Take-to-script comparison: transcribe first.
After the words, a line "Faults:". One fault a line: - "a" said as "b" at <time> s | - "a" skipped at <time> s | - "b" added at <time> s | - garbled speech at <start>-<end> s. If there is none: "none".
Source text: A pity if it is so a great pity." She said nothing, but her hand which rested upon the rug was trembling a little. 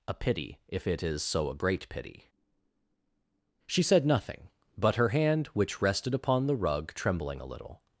A pity if it is so a great pity." She said nothing, but her hand which rested upon the rug trembling a little.
Faults:
- "was" skipped at 6.9 s